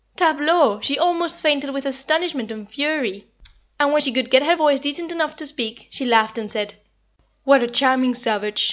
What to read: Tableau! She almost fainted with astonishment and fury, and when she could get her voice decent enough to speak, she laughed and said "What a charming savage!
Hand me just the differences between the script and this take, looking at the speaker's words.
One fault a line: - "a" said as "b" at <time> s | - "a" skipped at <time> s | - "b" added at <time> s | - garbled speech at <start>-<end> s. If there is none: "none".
none